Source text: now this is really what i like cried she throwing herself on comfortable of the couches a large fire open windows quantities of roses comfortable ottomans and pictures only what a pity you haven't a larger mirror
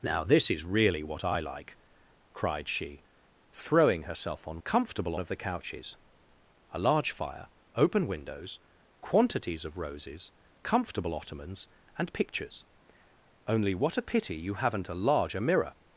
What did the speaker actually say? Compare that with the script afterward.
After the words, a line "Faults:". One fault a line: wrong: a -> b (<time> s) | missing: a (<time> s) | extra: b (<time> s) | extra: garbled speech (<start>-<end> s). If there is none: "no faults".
now this is really what i like cried she throwing herself on comfortable of the couches a large fire open windows quantities of roses comfortable ottomans and pictures only what a pity you haven't a larger mirror
Faults:
no faults